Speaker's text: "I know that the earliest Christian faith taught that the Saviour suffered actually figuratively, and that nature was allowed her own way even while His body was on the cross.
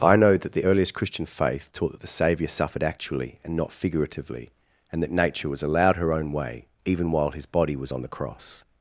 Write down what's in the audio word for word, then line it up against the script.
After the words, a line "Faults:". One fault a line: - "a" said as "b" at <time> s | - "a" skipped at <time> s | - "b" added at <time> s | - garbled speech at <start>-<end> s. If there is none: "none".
"I know that the earliest Christian faith taught that the Saviour suffered actually and not figuratively, and that nature was allowed her own way even while His body was on the cross.
Faults:
- "and not" added at 3.4 s